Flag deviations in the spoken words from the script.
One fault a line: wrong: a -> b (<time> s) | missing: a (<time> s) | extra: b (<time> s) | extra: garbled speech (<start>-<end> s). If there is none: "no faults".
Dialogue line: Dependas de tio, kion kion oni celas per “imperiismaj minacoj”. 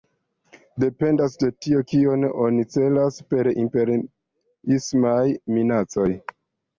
missing: kion (2.2 s)